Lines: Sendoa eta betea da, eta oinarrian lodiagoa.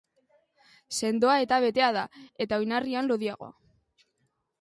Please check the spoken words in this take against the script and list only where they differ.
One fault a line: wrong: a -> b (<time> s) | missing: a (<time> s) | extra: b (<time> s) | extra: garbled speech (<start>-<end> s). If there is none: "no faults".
no faults